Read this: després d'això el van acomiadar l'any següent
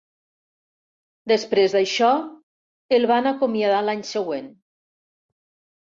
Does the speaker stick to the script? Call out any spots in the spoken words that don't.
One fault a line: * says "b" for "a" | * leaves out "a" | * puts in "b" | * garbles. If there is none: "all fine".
all fine